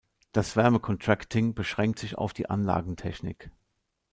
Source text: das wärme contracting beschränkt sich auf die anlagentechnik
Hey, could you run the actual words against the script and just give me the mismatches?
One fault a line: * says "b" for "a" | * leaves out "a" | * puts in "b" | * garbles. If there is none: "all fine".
all fine